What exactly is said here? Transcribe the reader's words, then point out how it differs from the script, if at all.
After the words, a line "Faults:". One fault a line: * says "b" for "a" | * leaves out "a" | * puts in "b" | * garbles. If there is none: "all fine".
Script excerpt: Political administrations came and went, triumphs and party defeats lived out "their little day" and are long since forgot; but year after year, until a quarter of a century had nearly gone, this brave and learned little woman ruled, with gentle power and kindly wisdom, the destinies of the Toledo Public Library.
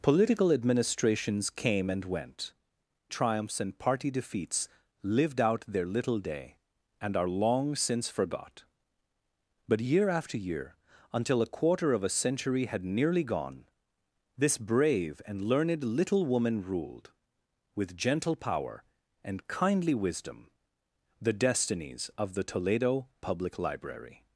Political administrations came and went, triumphs and party defeats lived out "their little day" and are long since forgot; but year after year, until a quarter of a century had nearly gone, this brave and learned little woman ruled, with gentle power and kindly wisdom, the destinies of the Toledo Public Library.
Faults:
all fine